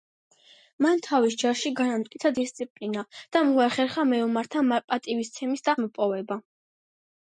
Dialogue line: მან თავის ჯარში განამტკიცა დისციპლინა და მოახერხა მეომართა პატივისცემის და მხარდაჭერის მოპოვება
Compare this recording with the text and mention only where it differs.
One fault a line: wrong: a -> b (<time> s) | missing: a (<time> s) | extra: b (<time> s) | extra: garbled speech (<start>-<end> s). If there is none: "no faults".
missing: მხარდაჭერის (5.8 s)